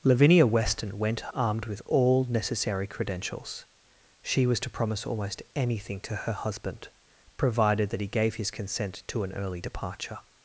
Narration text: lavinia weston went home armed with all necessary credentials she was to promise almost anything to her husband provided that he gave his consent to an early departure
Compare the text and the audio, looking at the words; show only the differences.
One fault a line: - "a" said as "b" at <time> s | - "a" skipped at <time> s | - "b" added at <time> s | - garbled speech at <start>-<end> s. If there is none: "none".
- "home" skipped at 1.3 s